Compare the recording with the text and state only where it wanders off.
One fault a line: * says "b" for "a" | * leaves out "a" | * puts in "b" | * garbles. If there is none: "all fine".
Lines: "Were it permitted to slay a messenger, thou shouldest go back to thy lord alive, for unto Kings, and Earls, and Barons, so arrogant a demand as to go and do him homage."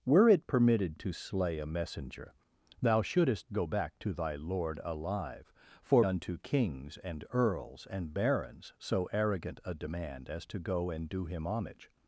all fine